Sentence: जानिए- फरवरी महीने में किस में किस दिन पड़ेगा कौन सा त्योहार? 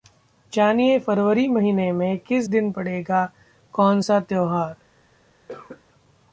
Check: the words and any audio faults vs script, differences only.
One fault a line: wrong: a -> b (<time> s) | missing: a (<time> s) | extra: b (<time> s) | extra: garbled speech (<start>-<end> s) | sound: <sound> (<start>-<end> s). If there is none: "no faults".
missing: में किस (2.5 s)
sound: cough (5.5-5.8 s)